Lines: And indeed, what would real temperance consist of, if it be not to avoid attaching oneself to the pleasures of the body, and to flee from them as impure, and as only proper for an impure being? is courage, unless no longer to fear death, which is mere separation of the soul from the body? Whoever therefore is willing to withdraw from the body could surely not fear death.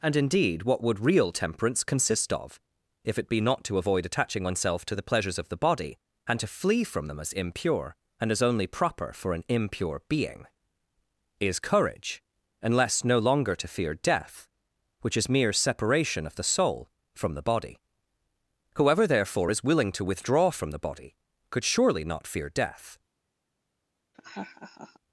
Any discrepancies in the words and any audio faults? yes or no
yes